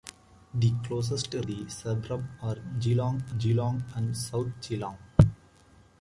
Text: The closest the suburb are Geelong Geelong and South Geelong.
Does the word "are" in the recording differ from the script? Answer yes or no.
no